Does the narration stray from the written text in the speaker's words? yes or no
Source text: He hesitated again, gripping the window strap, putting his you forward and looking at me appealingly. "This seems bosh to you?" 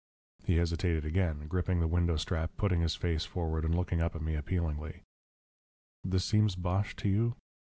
yes